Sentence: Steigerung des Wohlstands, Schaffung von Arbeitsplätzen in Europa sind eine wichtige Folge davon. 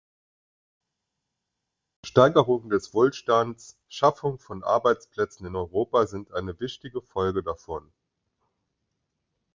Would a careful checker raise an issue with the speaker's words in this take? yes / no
no